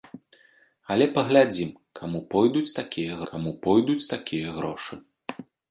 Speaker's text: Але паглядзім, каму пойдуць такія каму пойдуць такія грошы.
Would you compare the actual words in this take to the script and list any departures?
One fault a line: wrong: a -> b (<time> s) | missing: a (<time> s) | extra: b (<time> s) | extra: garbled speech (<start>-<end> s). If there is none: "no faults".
no faults